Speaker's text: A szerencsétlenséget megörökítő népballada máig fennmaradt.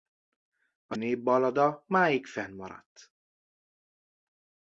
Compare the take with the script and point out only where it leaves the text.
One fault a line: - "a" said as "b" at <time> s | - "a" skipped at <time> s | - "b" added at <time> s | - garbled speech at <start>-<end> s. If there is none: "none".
- "szerencsétlenséget megörökítő" skipped at 0.9 s